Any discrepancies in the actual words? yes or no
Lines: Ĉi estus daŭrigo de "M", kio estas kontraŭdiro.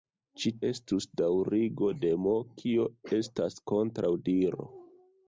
no